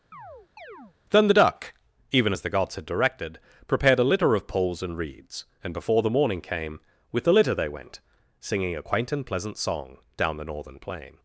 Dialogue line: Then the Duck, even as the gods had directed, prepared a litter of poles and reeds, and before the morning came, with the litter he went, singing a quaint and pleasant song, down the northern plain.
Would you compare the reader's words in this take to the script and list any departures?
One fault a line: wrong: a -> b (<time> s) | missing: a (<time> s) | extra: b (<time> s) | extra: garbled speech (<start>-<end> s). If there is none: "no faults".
wrong: he -> they (7.5 s)